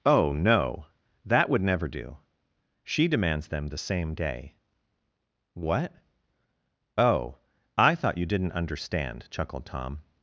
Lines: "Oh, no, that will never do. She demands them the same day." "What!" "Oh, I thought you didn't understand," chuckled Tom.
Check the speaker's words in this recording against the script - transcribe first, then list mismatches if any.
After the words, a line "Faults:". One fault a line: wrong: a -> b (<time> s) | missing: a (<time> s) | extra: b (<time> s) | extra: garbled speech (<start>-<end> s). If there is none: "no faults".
"Oh, no, that would never do. She demands them the same day." "What!" "Oh, I thought you didn't understand," chuckled Tom.
Faults:
wrong: will -> would (1.5 s)